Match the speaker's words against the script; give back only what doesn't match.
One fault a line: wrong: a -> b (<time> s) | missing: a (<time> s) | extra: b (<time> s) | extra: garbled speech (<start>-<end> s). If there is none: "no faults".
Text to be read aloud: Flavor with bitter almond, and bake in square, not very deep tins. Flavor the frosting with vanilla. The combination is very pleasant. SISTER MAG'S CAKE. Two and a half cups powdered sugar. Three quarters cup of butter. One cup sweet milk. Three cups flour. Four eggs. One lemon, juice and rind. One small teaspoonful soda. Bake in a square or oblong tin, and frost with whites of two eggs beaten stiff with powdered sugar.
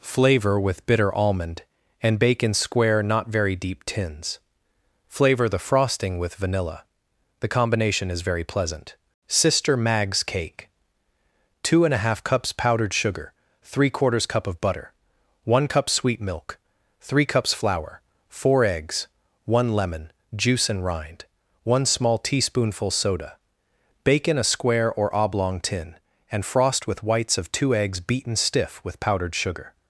no faults